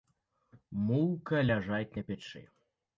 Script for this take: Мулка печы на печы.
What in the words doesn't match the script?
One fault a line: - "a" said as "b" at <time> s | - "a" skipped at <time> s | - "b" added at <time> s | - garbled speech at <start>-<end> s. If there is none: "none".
- "печы" said as "ляжаць" at 1.5 s